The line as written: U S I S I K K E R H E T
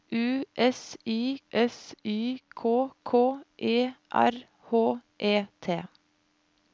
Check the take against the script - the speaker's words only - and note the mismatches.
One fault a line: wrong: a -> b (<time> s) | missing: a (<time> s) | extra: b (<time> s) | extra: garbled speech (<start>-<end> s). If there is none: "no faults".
no faults